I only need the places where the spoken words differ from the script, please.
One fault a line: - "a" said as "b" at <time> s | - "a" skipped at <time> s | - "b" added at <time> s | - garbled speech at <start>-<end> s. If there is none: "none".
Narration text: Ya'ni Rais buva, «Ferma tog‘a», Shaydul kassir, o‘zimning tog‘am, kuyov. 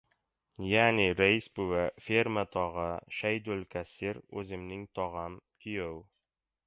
none